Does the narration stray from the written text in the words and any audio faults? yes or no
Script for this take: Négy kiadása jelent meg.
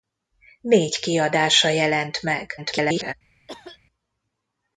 yes